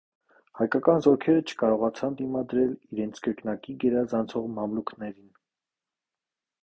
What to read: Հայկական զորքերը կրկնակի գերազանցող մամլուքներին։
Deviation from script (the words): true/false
true